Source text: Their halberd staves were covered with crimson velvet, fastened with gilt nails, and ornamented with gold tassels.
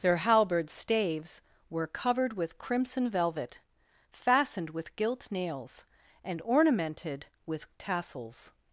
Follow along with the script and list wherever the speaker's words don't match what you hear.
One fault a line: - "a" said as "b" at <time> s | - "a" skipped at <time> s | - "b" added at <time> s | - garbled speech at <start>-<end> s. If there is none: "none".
- "gold" skipped at 7.7 s